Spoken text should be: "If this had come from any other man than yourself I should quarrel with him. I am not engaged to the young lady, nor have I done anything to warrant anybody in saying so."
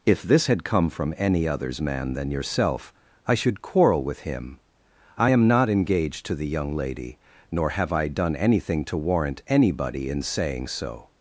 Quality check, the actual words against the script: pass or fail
fail